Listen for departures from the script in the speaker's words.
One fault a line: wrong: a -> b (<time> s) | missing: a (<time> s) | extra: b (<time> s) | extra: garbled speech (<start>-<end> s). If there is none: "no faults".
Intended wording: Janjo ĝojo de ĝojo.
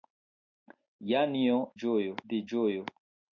no faults